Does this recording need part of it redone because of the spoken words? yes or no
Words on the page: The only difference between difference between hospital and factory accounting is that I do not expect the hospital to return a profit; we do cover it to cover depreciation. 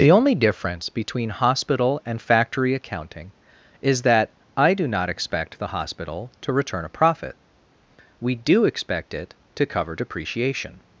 yes